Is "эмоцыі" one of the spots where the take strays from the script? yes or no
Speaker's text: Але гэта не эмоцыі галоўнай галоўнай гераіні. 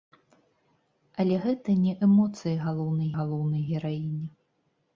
no